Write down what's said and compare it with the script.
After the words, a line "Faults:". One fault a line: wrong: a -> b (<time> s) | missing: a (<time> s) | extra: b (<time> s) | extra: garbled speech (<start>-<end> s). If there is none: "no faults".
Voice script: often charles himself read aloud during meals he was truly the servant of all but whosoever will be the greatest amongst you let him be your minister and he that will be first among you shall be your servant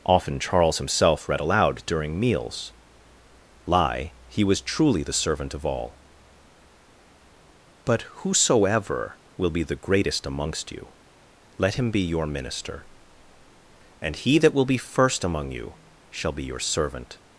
often charles himself read aloud during meals lie he was truly the servant of all but whosoever will be the greatest amongst you let him be your minister and he that will be first among you shall be your servant
Faults:
extra: lie (3.6 s)